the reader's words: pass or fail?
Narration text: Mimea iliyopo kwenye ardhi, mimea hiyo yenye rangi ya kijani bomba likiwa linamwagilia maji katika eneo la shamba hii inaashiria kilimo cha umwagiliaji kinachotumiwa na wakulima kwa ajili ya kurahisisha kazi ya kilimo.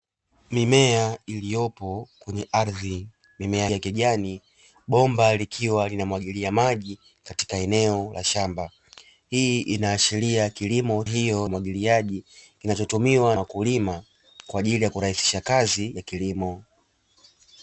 fail